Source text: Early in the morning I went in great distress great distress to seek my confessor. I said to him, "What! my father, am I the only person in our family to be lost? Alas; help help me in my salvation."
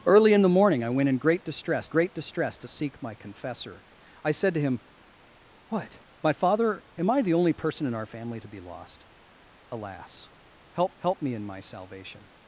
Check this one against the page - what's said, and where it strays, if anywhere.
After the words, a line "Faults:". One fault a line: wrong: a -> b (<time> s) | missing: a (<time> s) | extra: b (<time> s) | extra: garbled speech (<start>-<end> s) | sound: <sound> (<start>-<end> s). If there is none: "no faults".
Early in the morning I went in great distress great distress to seek my confessor. I said to him, "What! my father, am I the only person in our family to be lost? Alas; help help me in my salvation."
Faults:
no faults